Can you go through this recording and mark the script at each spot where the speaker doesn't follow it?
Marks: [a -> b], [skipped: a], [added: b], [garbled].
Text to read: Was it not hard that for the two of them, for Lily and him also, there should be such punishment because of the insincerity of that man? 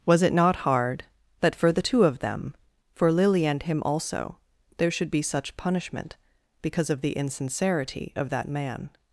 Was it not hard that for the two of them, for Lily and him also, there should be such punishment because of the insincerity of that man?